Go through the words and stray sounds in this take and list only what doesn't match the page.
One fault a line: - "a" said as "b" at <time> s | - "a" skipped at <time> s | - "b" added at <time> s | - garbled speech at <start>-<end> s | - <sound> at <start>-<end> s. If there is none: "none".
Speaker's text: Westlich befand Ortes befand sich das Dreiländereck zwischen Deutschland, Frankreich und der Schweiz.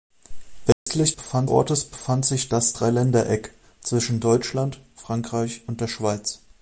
- dropout at 0.7-0.9 s